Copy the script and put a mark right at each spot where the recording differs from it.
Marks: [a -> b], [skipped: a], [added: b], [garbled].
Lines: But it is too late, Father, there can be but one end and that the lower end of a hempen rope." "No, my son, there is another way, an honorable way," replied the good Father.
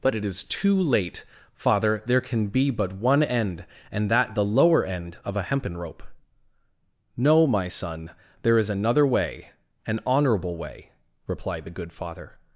But it is too late, Father, there can be but one end and that the lower end of a hempen rope." "No, my son, there is another way, an honorable way," replied the good Father.